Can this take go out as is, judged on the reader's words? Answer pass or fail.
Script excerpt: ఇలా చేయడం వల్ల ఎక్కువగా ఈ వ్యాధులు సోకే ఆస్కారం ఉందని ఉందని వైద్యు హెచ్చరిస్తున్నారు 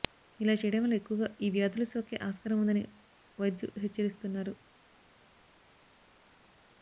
fail